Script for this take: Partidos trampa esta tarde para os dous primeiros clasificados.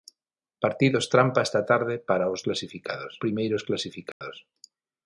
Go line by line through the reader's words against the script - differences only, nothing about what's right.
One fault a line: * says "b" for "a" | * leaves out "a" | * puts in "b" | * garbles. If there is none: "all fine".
* says "clasificados" for "dous"